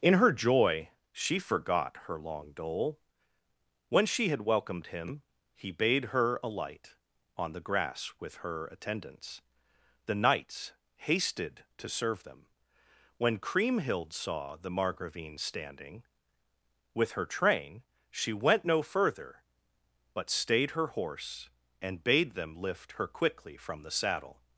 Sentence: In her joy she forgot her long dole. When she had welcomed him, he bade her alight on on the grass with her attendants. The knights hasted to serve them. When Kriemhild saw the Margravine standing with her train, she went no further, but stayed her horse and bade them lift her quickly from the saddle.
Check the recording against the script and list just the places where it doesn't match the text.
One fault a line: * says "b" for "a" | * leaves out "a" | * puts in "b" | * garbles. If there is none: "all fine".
* leaves out "on"